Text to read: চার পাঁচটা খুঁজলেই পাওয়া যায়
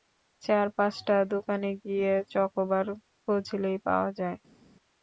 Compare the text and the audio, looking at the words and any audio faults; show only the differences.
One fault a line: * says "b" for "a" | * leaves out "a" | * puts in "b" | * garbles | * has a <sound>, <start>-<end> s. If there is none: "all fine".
* puts in "দোকানে গিয়ে চকোবার"